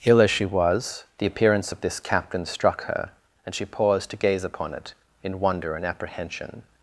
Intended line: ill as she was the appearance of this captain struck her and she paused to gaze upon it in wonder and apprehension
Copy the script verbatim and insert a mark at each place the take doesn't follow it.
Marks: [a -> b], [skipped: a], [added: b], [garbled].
ill as she was the appearance of this captain struck her and she paused to gaze upon it in wonder and apprehension